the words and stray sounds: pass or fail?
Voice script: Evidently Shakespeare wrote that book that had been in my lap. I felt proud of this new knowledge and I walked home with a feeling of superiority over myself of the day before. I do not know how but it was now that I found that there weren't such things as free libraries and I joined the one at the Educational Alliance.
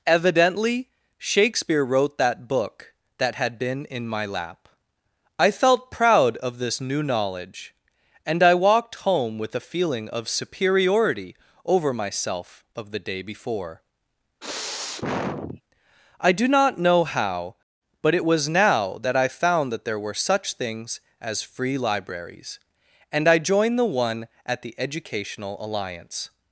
fail